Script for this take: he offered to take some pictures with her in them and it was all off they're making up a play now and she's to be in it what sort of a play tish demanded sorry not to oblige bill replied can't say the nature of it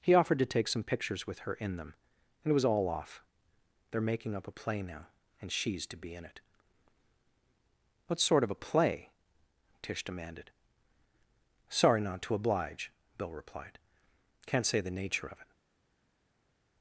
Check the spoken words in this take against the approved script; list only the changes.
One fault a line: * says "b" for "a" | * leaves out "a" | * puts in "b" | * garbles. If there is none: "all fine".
all fine